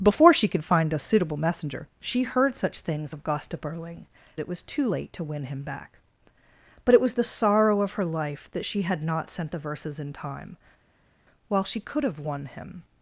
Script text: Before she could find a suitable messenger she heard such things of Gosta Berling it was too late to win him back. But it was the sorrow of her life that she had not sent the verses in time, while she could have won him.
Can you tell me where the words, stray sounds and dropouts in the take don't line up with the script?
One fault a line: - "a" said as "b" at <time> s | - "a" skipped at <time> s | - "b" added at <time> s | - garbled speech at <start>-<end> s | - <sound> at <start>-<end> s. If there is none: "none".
none